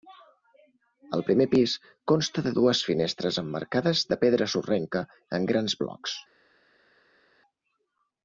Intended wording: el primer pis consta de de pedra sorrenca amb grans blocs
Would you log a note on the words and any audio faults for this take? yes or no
yes